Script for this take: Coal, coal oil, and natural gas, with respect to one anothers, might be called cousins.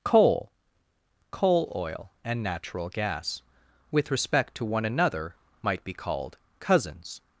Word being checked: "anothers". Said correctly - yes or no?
no